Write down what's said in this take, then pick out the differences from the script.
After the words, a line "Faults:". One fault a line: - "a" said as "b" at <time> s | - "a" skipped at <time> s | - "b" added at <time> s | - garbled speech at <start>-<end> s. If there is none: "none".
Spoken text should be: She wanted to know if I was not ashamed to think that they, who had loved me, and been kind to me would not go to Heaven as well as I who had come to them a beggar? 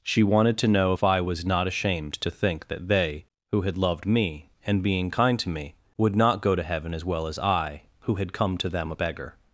She wanted to know if I was not ashamed to think that they, who had loved me, and being kind to me would not go to Heaven as well as I who had come to them a beggar?
Faults:
- "been" said as "being" at 4.8 s